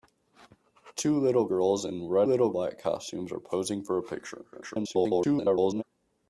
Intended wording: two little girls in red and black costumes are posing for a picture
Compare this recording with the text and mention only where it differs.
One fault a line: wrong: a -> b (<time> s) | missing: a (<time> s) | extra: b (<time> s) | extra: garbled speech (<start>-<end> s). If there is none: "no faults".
wrong: and -> little (2.2 s)
extra: garbled speech (4.5-5.8 s)